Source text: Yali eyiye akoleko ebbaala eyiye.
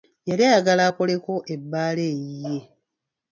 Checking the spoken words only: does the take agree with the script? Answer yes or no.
no